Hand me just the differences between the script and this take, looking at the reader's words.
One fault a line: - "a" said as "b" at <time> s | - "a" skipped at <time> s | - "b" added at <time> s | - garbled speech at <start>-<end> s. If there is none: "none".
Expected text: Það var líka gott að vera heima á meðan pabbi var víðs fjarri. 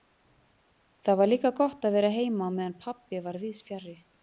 none